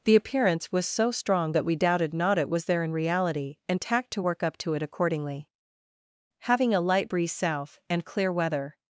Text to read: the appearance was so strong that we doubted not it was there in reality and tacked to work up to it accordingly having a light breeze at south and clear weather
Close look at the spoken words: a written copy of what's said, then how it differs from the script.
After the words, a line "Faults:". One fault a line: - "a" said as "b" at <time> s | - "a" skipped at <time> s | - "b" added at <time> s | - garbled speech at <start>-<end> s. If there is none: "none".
the appearance was so strong that we doubted not it was there in reality and tacked to work up to it accordingly having a light breeze south and clear weather
Faults:
- "at" skipped at 7.3 s